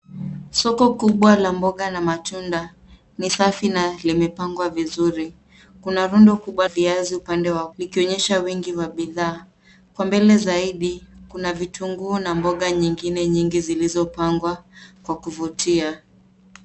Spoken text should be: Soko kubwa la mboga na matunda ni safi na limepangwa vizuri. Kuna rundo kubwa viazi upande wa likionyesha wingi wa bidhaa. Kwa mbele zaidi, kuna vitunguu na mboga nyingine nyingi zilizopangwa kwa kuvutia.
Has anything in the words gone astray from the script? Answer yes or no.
no